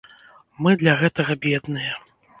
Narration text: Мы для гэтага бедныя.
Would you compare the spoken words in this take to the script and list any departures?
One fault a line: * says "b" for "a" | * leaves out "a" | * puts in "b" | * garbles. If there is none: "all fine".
all fine